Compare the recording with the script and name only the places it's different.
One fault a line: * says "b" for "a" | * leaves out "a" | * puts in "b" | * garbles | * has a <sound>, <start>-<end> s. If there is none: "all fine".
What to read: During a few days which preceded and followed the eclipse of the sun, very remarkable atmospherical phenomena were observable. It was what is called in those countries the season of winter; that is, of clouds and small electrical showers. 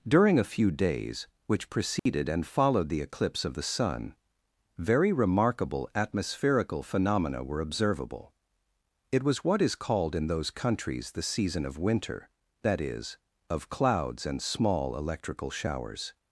* has a dropout, 2.0-2.1 s